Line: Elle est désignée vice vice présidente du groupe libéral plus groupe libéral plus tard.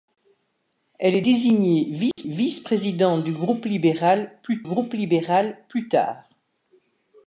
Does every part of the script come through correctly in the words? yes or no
yes